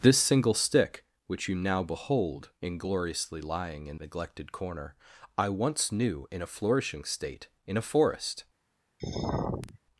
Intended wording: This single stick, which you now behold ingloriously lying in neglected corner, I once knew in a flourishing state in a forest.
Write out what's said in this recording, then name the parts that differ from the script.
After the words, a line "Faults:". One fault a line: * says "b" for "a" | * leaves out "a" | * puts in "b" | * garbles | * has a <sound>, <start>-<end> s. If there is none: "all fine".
This single stick, which you now behold ingloriously lying in neglected corner, I once knew in a flourishing state in a forest.
Faults:
* has a sigh, 9.0-9.8 s